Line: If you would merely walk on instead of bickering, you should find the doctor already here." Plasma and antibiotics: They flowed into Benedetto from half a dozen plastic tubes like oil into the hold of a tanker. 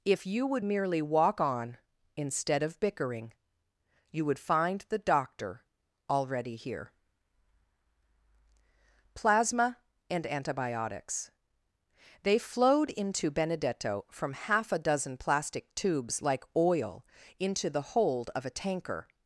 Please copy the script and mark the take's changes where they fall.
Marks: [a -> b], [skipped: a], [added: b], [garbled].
If you would merely walk on instead of bickering, you [should -> would] find the doctor already here." Plasma and antibiotics: They flowed into Benedetto from half a dozen plastic tubes like oil into the hold of a tanker.